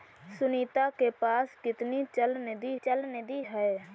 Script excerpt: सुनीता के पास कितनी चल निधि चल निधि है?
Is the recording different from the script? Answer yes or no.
no